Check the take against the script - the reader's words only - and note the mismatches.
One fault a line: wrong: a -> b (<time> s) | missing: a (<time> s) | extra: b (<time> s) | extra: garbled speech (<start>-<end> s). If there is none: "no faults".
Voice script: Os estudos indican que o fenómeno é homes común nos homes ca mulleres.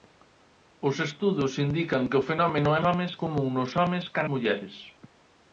no faults